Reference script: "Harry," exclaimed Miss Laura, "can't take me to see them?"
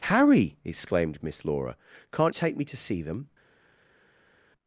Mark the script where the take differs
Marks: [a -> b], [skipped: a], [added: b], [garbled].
"Harry," exclaimed Miss Laura, "can't take me to see them?"